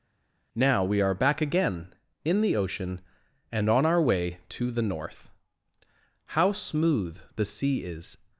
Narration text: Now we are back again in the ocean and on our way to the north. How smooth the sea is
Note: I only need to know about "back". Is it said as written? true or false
true